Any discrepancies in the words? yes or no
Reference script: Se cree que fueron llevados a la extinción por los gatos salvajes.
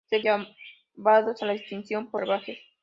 yes